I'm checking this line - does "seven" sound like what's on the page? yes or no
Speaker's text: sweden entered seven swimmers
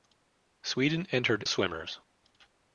no